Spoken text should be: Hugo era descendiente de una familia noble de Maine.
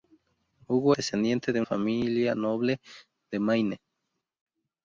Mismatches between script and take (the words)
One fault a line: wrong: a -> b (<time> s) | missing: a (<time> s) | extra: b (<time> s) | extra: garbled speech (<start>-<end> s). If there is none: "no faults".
missing: era (0.9 s)
missing: una (1.6 s)